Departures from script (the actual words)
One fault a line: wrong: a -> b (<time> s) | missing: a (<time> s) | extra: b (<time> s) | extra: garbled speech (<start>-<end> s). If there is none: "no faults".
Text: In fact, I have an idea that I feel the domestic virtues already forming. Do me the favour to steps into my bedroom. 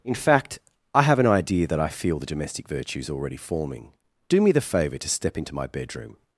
wrong: steps -> step (5.1 s)